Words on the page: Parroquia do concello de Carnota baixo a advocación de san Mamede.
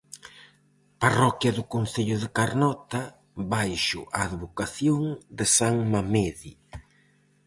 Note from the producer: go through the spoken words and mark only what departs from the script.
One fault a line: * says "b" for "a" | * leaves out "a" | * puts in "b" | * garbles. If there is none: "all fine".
all fine